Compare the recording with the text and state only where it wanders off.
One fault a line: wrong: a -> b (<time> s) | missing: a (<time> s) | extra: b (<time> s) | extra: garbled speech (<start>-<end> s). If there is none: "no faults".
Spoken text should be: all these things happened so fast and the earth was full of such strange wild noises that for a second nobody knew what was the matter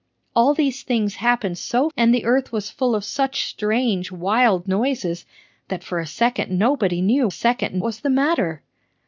missing: fast (1.9 s)
wrong: what -> second (7.3 s)